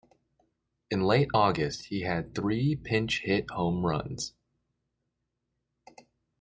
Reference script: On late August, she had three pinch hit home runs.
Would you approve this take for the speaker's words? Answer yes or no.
no